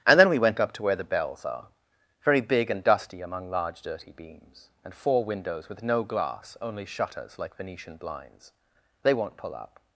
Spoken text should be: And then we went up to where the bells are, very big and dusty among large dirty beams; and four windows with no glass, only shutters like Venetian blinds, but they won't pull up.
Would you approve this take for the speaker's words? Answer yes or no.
no